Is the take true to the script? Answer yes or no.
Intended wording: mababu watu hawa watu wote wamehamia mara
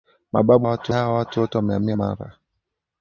yes